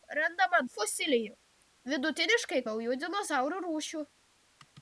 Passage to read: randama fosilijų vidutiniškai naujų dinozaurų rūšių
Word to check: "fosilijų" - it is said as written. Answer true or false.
true